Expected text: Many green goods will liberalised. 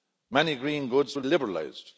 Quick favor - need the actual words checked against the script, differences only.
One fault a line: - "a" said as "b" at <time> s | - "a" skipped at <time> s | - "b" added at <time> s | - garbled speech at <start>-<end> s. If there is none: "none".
none